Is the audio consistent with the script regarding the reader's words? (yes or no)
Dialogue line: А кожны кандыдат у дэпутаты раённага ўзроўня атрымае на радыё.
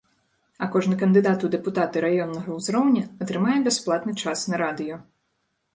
no